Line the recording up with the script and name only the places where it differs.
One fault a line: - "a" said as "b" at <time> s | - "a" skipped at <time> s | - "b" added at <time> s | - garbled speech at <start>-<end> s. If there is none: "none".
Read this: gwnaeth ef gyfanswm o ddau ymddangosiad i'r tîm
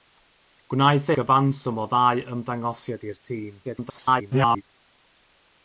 - "ef" skipped at 1.1 s
- garbled speech at 3.6-4.6 s